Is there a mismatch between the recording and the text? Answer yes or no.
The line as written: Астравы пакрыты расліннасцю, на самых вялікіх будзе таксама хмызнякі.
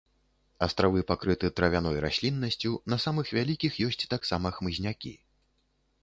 yes